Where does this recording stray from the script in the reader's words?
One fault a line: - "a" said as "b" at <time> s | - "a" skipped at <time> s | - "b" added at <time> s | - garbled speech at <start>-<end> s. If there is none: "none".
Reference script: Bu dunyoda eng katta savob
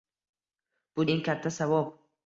- "dunyoda" skipped at 1.1 s